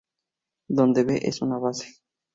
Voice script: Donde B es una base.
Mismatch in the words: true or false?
false